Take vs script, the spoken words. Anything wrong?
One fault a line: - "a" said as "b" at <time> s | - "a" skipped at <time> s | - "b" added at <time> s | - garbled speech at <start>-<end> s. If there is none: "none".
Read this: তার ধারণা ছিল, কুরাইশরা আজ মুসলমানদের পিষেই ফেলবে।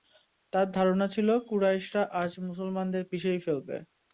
none